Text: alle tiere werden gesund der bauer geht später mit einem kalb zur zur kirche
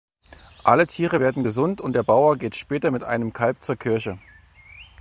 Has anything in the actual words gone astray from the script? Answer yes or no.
yes